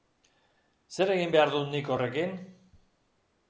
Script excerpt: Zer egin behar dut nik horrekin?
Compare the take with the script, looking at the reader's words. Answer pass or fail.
pass